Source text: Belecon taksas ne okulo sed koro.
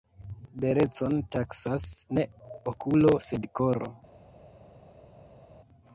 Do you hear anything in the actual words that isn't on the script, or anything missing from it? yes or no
no